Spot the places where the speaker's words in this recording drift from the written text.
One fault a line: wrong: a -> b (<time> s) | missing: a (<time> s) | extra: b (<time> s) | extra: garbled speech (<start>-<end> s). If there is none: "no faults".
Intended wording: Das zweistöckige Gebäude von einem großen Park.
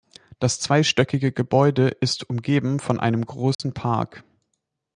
extra: ist umgeben (1.9 s)